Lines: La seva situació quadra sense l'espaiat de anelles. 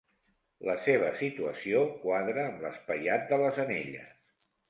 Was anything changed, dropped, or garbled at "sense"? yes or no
yes